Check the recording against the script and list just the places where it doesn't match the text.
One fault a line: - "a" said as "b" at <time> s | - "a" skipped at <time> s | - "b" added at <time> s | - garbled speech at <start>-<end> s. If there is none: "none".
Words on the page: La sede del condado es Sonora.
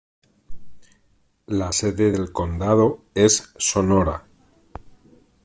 none